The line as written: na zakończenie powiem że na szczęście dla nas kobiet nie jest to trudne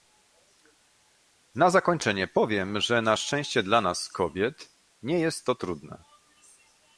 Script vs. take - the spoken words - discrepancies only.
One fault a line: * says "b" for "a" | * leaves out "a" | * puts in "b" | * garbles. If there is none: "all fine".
all fine